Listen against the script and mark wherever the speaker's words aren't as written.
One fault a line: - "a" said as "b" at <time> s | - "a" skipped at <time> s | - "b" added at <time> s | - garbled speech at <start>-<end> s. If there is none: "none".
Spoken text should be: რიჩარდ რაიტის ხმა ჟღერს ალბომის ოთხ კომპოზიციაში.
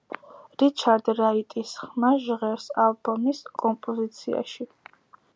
- "ოთხ" skipped at 3.4 s